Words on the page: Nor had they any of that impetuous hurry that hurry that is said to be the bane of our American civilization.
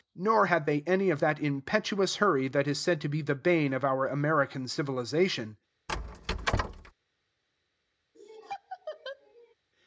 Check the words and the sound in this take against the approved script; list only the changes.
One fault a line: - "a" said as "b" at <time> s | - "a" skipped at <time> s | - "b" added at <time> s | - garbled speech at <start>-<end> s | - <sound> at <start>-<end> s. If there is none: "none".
- "hurry that" skipped at 2.7 s
- squeak at 5.9-6.9 s
- laugh at 8.1-9.5 s